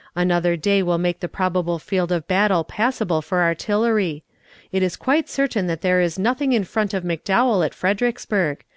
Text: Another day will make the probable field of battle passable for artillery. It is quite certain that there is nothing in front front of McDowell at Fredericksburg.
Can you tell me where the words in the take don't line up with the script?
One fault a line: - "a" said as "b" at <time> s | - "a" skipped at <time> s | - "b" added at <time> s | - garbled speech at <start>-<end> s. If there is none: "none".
- "front" skipped at 6.9 s